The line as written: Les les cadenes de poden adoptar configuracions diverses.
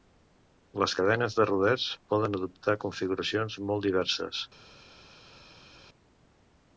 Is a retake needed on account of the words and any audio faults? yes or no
yes